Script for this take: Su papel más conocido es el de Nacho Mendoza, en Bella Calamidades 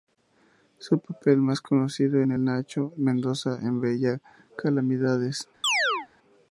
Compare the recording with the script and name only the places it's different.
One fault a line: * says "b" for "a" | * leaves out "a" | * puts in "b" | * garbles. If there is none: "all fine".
all fine